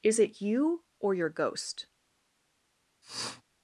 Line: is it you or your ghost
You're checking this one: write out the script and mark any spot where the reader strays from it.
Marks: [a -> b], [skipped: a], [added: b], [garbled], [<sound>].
is it you or your ghost [sniff]